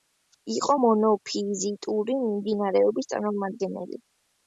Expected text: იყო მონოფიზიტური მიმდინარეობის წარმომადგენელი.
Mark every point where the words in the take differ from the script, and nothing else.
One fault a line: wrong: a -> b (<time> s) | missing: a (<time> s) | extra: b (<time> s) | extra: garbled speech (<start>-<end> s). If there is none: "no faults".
no faults